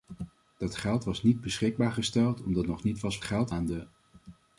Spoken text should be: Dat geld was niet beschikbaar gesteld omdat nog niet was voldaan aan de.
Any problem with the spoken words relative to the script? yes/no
yes